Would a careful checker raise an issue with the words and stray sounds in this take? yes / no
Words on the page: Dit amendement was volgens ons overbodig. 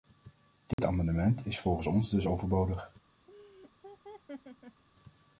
yes